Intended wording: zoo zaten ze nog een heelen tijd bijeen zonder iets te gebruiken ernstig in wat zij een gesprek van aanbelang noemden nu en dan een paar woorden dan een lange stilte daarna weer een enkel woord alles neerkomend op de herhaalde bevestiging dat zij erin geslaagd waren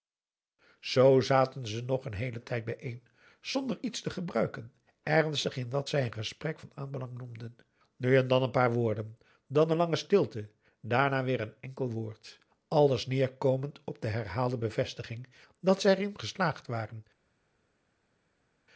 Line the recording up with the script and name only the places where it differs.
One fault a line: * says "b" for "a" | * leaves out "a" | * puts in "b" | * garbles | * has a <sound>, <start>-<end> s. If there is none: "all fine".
all fine